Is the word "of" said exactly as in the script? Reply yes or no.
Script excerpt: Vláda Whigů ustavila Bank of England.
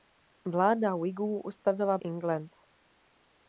no